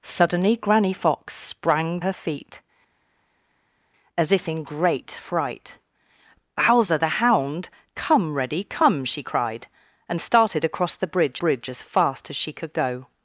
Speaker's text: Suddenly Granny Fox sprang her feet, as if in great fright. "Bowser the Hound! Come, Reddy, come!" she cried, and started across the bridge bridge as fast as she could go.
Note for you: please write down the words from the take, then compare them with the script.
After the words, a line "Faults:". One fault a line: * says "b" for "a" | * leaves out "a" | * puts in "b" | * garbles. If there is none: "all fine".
Suddenly Granny Fox sprang her feet, as if in great fright. "Bowser the Hound! Come, Reddy, come!" she cried, and started across the bridge bridge as fast as she could go.
Faults:
all fine